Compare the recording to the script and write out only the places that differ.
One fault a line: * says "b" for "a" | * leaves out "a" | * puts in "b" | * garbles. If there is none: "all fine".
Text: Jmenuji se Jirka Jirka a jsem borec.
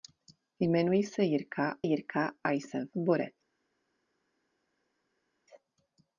all fine